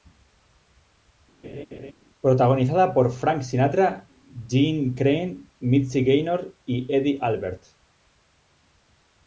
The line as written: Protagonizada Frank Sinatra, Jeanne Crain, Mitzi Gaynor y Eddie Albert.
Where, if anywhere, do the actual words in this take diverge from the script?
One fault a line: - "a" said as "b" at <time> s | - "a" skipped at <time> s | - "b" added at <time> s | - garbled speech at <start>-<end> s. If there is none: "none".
- "por" added at 2.9 s